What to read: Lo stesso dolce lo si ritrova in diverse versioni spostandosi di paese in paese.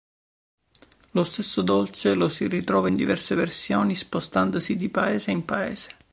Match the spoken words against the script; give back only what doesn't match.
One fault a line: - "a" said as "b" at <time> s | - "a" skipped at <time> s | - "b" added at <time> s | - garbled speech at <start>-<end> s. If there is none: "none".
none